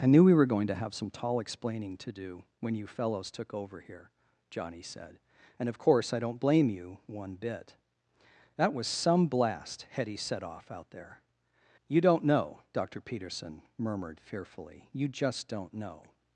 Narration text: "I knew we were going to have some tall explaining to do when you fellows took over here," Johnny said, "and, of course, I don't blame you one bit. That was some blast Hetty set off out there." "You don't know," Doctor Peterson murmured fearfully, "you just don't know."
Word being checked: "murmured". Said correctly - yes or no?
yes